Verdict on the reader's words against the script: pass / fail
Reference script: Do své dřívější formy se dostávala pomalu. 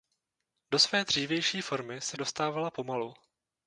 pass